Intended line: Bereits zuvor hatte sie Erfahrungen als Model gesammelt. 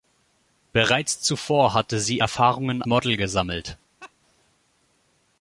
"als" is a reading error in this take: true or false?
true